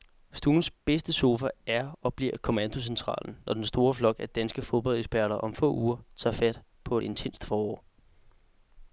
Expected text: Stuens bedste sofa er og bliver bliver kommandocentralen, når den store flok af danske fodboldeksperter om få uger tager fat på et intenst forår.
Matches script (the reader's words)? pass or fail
fail